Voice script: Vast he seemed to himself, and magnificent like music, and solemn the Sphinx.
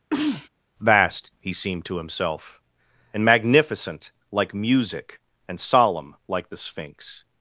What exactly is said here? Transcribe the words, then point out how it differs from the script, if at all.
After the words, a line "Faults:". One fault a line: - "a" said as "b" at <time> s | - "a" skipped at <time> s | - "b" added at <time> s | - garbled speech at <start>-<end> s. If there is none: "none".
Vast he seemed to himself, and magnificent like music, and solemn like the Sphinx.
Faults:
- "like" added at 6.3 s